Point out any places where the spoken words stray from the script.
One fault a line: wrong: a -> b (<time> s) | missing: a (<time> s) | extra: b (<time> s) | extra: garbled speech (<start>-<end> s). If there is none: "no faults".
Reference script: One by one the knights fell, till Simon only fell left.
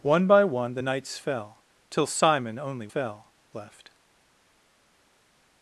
no faults